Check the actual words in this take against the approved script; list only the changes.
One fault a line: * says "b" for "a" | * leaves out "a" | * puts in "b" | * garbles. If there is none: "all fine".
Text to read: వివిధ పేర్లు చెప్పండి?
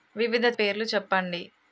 all fine